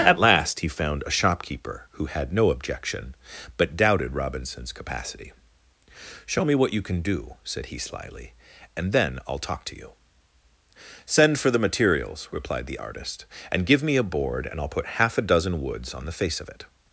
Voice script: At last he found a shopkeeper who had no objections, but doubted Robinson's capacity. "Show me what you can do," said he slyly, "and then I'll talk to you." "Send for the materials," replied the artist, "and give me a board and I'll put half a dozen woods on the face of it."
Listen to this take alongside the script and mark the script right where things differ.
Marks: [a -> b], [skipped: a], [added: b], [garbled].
At last he found a shopkeeper who had no [objections, -> objection] but doubted Robinson's capacity. "Show me what you can do," said he slyly, "and then I'll talk to you." "Send for the materials," replied the artist, "and give me a board and I'll put half a dozen woods on the face of it."